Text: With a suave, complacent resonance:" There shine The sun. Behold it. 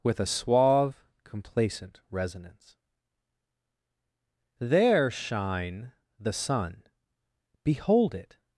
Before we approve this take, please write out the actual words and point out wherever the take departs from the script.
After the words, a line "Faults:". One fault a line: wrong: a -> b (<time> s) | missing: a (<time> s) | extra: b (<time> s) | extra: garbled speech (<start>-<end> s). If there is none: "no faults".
With a suave, complacent resonance:" There shine The sun. Behold it.
Faults:
no faults